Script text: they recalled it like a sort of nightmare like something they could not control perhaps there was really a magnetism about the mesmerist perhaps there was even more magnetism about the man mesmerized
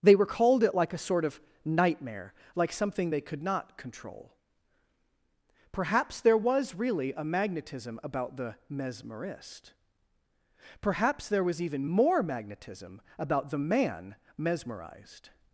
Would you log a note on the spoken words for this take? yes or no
no